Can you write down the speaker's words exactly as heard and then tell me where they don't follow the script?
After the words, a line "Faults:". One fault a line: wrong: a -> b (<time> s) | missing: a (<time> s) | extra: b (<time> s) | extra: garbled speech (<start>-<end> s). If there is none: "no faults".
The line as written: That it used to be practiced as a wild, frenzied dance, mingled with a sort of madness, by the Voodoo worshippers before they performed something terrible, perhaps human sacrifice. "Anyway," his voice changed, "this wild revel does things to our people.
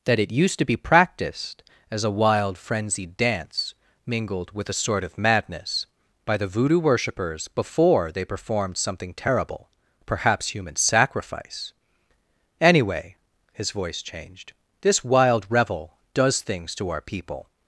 That it used to be practiced as a wild, frenzied dance, mingled with a sort of madness, by the Voodoo worshippers before they performed something terrible, perhaps human sacrifice. "Anyway," his voice changed, "this wild revel does things to our people.
Faults:
no faults